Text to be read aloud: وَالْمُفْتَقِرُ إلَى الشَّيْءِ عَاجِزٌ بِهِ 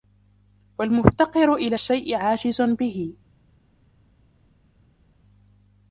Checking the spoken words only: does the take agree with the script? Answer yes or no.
yes